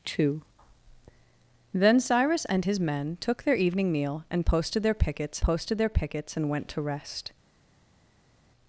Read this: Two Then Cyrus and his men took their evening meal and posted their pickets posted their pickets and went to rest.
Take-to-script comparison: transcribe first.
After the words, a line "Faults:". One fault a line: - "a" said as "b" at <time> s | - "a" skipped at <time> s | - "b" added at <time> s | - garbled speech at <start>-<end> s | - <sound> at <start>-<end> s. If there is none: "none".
Two Then Cyrus and his men took their evening meal and posted their pickets posted their pickets and went to rest.
Faults:
none